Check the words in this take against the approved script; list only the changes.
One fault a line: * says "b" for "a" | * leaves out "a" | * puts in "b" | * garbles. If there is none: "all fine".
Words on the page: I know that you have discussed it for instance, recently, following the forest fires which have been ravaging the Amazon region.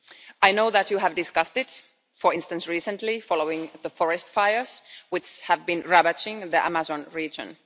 all fine